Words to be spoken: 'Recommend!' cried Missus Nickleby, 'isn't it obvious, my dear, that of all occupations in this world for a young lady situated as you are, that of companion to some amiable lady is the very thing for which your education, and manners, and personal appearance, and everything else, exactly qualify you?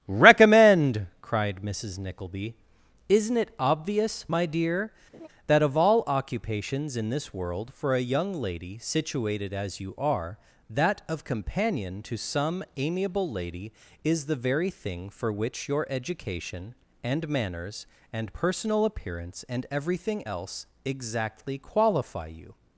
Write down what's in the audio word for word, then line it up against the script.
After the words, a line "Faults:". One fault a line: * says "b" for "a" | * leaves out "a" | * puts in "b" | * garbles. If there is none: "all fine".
'Recommend!' cried Missus Nickleby, 'isn't it obvious, my dear, that of all occupations in this world for a young lady situated as you are, that of companion to some amiable lady is the very thing for which your education, and manners, and personal appearance, and everything else, exactly qualify you?
Faults:
all fine